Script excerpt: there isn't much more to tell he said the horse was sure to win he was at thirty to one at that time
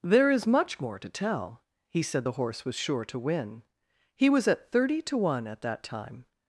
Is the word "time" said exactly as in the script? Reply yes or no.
yes